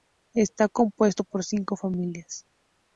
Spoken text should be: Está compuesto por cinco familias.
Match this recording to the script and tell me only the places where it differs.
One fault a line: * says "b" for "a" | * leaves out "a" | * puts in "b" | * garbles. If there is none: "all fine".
all fine